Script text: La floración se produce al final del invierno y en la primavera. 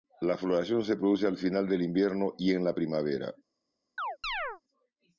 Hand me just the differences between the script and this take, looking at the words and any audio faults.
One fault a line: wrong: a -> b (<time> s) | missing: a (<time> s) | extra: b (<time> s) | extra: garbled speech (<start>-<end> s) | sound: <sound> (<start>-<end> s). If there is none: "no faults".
sound: chirp (4.0-4.6 s)